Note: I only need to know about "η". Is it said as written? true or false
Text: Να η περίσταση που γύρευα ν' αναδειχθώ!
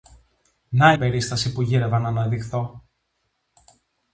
false